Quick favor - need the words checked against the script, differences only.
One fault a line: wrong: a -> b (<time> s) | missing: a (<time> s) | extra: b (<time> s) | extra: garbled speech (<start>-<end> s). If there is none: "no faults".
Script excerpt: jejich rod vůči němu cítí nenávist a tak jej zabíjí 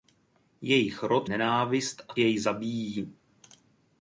missing: vůči němu cítí (1.3 s)
missing: tak (2.1 s)